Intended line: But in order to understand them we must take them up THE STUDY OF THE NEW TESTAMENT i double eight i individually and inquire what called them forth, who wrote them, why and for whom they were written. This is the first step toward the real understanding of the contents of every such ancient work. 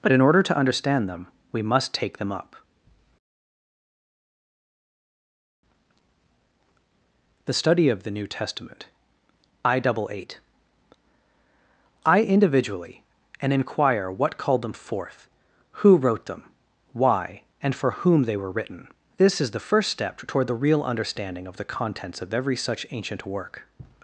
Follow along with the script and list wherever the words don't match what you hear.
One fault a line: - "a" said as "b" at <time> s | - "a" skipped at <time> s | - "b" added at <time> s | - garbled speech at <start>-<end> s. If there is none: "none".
none